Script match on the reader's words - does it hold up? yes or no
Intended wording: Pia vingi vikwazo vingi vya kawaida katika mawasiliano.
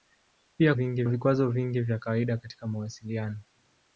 yes